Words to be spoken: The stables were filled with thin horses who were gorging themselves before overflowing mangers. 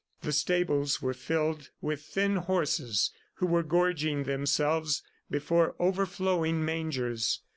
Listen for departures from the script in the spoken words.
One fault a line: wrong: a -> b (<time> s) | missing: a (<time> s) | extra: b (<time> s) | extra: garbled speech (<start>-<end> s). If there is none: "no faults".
no faults